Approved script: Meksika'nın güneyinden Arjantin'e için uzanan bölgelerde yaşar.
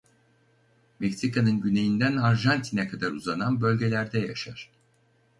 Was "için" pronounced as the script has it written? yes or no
no